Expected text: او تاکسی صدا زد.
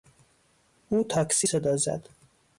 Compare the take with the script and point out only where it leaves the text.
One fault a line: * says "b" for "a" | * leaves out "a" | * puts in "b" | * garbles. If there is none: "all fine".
all fine